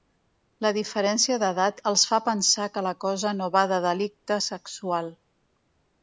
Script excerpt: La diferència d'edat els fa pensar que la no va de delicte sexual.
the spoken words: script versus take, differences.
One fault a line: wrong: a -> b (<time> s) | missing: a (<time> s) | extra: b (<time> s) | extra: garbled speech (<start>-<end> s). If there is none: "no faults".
extra: cosa (3.0 s)